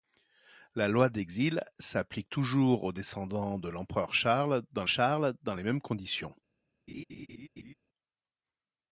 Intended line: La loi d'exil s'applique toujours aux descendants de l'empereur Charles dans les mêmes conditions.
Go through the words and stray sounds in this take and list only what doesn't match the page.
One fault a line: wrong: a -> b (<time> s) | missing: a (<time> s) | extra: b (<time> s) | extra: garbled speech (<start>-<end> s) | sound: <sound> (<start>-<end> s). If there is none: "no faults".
extra: Charles dans (4.9 s)
sound: laugh (6.9-7.7 s)